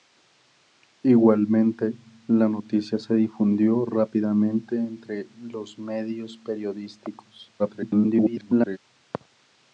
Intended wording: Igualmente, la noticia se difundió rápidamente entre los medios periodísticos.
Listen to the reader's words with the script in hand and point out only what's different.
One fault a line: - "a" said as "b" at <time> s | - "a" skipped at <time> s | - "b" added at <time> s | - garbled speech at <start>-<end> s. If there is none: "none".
- garbled speech at 7.6-8.8 s